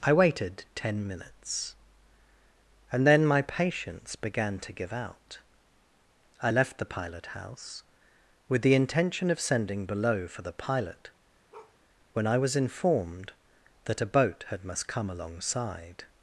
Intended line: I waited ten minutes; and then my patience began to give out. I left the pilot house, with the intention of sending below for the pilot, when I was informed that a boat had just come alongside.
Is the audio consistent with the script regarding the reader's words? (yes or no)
no